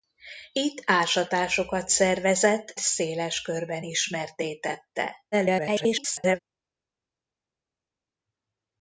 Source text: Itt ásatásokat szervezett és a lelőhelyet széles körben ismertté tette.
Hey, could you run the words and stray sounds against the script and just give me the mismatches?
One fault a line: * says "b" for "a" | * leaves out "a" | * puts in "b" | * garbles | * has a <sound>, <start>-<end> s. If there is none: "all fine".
* leaves out "és a lelőhelyet"
* garbles